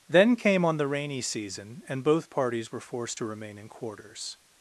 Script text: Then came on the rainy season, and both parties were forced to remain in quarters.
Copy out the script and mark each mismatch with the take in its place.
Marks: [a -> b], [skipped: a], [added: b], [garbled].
Then came on the rainy season, and both parties were forced to remain in quarters.